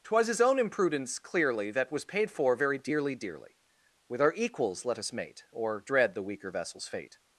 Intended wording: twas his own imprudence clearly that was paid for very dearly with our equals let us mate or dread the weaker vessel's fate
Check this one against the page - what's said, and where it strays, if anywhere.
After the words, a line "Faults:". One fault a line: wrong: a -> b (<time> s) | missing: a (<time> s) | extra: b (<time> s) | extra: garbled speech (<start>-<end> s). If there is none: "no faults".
twas his own imprudence clearly that was paid for very dearly dearly with our equals let us mate or dread the weaker vessel's fate
Faults:
extra: dearly (3.1 s)